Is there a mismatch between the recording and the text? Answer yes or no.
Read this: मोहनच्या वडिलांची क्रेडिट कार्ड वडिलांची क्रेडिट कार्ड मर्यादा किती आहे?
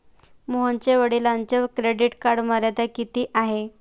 yes